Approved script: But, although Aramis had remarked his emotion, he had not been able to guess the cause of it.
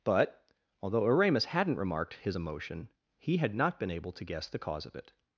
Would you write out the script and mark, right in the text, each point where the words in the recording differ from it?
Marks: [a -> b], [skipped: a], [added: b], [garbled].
But, although Aramis [had -> hadn't] remarked his emotion, he had not been able to guess the cause of it.